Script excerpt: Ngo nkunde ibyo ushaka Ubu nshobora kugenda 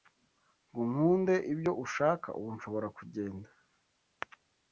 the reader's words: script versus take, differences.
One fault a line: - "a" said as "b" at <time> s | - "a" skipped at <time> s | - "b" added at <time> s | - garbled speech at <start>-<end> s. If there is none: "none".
none